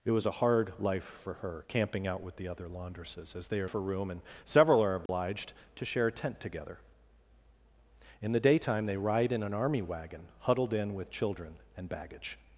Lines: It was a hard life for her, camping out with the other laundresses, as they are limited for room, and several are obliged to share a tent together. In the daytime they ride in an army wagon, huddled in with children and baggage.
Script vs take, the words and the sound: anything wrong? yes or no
yes